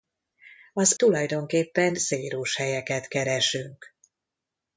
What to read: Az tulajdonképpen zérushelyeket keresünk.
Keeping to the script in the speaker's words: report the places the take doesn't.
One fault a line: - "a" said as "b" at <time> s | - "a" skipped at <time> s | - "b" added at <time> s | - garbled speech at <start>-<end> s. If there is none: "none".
none